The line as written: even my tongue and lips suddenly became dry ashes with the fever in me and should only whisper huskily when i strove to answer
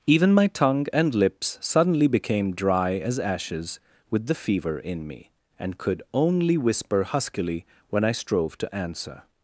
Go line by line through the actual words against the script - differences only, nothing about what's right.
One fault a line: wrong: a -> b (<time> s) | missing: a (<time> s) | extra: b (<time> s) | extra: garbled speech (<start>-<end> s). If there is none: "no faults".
extra: as (3.0 s)
wrong: should -> could (5.8 s)